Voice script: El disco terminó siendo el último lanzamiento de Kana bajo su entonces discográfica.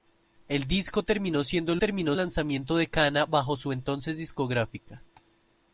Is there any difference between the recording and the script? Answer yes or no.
yes